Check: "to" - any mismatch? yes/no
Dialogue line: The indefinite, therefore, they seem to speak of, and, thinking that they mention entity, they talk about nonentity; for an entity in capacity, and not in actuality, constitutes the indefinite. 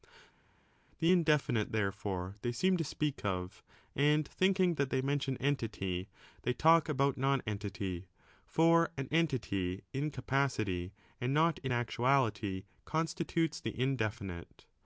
no